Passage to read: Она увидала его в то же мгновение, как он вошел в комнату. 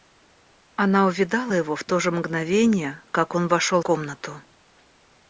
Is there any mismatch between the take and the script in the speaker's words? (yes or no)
yes